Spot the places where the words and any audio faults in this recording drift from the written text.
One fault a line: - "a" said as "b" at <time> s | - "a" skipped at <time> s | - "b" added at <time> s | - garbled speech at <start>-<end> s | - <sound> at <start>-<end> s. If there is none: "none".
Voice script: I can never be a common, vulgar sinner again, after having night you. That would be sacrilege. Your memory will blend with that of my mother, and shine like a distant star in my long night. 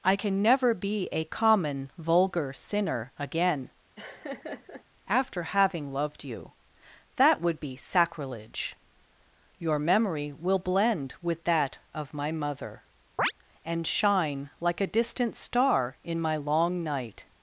- laugh at 4.0-4.8 s
- "night" said as "loved" at 5.9 s
- chirp at 13.2-13.3 s